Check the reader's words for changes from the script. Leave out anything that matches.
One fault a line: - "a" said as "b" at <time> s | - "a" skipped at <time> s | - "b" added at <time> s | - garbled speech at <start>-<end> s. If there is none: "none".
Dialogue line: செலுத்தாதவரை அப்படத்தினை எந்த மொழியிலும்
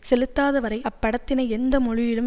none